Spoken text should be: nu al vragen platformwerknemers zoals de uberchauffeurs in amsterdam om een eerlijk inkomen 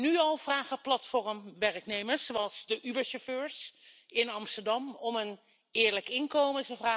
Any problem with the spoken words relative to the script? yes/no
no